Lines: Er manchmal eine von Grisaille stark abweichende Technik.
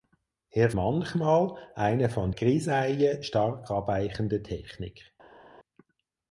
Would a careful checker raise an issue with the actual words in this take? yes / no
no